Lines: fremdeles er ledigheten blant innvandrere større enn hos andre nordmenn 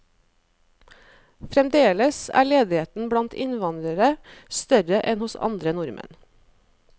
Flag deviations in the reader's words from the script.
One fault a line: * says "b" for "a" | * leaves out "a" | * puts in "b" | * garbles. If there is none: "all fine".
all fine